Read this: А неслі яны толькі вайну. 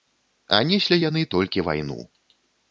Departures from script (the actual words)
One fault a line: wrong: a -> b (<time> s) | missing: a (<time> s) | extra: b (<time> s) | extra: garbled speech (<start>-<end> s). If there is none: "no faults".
no faults